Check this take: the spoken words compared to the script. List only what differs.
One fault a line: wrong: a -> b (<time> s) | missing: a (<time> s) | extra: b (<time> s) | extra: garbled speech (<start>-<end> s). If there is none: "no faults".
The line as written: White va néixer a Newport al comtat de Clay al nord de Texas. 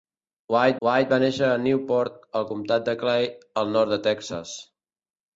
extra: white (0.9 s)